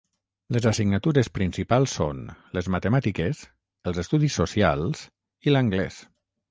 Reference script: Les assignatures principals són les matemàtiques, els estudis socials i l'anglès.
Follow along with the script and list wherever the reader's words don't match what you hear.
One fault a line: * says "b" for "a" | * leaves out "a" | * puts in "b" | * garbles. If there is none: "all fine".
all fine